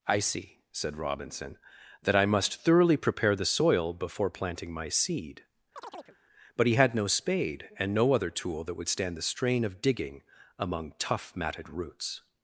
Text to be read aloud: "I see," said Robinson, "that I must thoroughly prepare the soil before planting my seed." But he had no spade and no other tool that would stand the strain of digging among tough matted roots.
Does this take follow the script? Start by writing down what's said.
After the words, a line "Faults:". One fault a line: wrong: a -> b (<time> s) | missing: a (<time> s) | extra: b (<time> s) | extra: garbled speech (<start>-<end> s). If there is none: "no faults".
"I see," said Robinson, "that I must thoroughly prepare the soil before planting my seed." But he had no spade and no other tool that would stand the strain of digging among tough matted roots.
Faults:
no faults